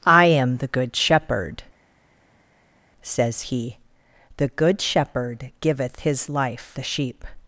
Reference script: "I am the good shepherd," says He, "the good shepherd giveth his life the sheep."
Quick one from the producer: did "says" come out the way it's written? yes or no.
yes